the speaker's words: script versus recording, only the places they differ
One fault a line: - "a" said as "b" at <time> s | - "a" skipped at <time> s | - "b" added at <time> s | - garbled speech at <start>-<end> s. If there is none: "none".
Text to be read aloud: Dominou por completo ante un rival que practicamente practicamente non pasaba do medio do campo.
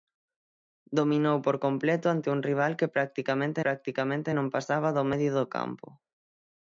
none